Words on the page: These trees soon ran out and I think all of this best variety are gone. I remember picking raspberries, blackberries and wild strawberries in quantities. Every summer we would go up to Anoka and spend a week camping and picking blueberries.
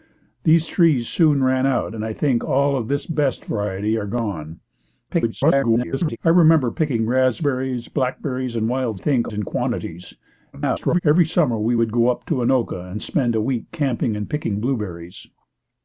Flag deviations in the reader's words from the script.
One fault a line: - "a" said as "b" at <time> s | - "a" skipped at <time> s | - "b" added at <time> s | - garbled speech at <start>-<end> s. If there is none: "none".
- garbled speech at 5.1-6.2 s
- "strawberries" said as "think" at 8.9 s
- garbled speech at 10.5-11.0 s